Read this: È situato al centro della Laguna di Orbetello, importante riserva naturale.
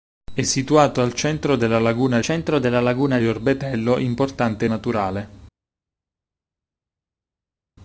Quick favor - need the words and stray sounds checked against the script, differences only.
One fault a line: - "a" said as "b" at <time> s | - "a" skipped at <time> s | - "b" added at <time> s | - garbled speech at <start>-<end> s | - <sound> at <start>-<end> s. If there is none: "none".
- "centro della Laguna" added at 2.2 s
- "riserva" skipped at 4.7 s